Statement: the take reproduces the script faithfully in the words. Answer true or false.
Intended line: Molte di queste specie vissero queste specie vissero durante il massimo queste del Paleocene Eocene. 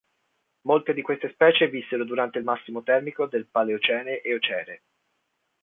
false